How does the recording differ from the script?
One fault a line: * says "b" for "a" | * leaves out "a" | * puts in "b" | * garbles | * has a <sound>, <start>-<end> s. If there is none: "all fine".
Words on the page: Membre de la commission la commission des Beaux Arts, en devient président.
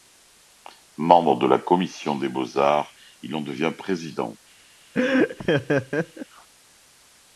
* leaves out "la commission"
* puts in "il"
* has a laugh, 4.9-6.3 s